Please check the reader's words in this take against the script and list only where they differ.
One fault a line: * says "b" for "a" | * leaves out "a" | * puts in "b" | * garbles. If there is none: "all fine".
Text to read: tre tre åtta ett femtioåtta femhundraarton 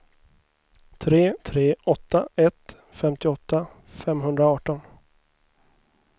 all fine